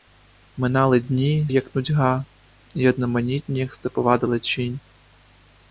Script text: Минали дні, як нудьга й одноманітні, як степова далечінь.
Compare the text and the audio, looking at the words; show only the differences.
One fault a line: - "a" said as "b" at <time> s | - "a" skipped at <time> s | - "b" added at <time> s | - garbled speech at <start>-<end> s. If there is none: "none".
none